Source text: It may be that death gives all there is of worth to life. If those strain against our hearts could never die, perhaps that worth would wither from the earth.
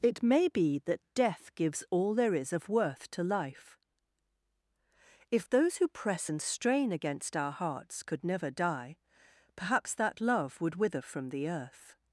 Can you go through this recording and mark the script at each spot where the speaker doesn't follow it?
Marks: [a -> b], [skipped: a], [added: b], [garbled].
It may be that death gives all there is of worth to life. If those [added: who press and] strain against our hearts could never die, perhaps that [worth -> love] would wither from the earth.